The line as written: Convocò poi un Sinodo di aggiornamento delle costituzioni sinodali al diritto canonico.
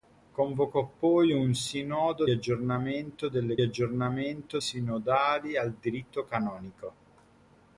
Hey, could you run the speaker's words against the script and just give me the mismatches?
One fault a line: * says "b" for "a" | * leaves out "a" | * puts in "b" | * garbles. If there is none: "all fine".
* leaves out "di"
* says "aggiornamento" for "costituzioni"